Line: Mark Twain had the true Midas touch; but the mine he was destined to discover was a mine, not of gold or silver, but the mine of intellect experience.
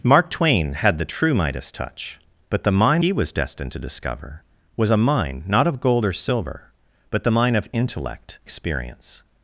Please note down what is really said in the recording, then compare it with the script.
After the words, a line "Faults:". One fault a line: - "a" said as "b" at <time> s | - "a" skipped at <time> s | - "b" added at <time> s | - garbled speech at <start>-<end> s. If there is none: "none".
Mark Twain had the true Midas touch; but the mine he was destined to discover was a mine, not of gold or silver, but the mine of intellect experience.
Faults:
none